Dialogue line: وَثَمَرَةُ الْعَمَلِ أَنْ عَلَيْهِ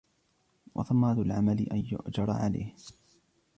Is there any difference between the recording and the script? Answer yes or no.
yes